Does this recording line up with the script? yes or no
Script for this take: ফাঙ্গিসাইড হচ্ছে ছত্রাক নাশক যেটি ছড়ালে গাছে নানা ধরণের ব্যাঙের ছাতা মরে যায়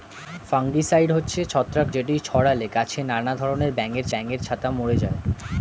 no